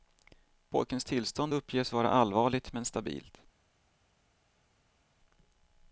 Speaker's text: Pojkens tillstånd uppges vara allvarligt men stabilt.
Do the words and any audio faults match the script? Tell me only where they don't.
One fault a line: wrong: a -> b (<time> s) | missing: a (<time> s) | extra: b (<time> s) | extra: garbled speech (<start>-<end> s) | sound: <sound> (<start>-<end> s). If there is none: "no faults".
no faults